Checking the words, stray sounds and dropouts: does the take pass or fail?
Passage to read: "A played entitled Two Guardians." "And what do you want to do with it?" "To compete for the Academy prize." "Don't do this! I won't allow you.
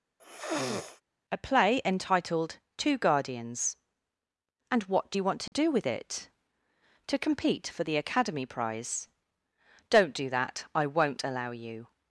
fail